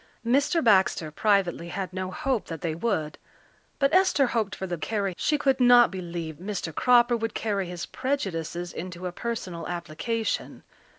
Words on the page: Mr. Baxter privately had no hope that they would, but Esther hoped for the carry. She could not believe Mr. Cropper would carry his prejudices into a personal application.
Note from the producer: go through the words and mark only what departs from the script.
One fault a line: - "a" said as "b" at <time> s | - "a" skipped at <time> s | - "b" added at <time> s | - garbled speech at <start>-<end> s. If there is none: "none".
none